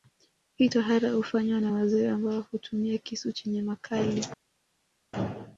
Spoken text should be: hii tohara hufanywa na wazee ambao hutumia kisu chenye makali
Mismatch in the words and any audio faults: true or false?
false